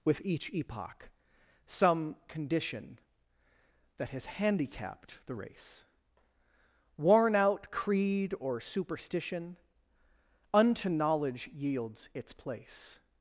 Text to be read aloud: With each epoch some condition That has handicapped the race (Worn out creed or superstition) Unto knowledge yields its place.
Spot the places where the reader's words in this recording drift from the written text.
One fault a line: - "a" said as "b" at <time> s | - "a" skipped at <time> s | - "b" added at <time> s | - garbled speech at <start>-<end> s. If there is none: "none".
none